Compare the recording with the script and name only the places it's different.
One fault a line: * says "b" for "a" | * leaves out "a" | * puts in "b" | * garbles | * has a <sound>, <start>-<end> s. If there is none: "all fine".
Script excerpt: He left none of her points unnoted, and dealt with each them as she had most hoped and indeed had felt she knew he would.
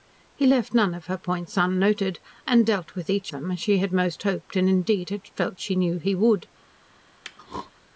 * has a throat clearing, 7.2-7.7 s